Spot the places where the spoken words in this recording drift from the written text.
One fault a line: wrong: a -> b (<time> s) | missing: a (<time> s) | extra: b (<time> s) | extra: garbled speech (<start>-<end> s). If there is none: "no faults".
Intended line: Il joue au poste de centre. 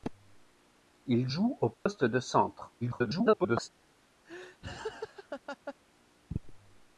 extra: garbled speech (2.8-3.7 s)